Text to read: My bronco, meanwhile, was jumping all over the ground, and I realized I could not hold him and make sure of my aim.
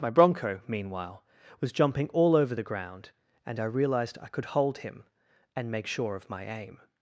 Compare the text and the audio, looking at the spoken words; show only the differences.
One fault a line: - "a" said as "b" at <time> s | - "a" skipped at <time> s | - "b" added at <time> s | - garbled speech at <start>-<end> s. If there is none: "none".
- "not" skipped at 4.5 s